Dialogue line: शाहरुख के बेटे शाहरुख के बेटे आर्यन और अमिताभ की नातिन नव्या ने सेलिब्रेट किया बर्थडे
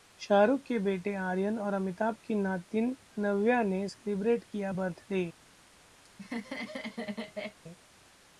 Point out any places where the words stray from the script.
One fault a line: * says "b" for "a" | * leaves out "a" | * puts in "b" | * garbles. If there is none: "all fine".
* leaves out "शाहरुख के बेटे"